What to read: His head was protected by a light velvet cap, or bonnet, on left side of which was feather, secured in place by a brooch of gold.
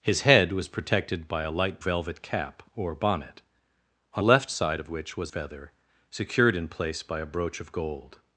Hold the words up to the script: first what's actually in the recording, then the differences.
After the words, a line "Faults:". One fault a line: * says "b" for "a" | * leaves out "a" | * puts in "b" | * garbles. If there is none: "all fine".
His head was protected by a light velvet cap, or bonnet, on left side of which was feather, secured in place by a brooch of gold.
Faults:
all fine